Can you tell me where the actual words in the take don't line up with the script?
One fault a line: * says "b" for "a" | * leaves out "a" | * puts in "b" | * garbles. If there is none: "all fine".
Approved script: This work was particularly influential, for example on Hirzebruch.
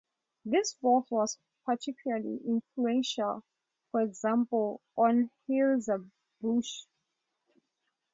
all fine